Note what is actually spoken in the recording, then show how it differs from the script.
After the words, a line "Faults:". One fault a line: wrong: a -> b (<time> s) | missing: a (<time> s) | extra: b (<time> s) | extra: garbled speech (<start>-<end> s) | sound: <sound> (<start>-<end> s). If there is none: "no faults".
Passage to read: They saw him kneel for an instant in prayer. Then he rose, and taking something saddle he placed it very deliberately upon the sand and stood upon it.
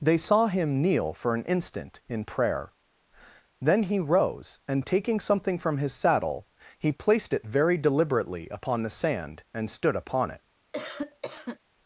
They saw him kneel for an instant in prayer. Then he rose, and taking something from his saddle he placed it very deliberately upon the sand and stood upon it.
Faults:
extra: from his (5.6 s)
sound: cough (10.7-11.6 s)